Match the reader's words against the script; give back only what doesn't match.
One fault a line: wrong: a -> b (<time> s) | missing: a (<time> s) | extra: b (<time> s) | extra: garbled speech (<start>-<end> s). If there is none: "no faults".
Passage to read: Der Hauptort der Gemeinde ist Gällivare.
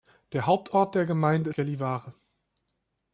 missing: ist (1.5 s)